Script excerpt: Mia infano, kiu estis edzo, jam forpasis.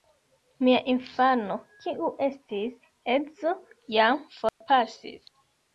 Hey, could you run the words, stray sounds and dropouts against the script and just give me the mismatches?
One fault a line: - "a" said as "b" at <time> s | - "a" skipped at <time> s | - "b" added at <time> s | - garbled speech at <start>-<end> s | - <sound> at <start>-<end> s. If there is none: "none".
- dropout at 4.5-4.6 s